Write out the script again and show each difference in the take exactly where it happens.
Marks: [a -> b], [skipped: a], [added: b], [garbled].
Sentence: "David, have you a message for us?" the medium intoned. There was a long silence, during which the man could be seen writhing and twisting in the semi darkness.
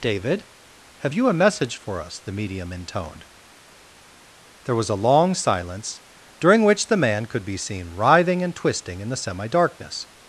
"David, have you a message for us?" the medium intoned. There was a long silence, during which the man could be seen writhing and twisting in the semi darkness.